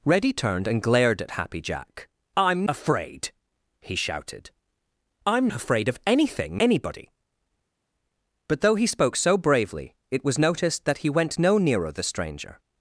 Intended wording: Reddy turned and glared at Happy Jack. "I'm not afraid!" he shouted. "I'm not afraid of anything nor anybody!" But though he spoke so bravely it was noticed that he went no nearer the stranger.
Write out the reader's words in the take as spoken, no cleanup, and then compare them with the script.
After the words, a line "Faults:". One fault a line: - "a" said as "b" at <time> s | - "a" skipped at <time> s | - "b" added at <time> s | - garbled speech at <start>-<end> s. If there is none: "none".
Reddy turned and glared at Happy Jack. "I'm afraid!" he shouted. "I'm afraid of anything anybody!" But though he spoke so bravely it was noticed that he went no nearer the stranger.
Faults:
- "not" skipped at 2.7 s
- "not" skipped at 5.5 s
- "nor" skipped at 6.6 s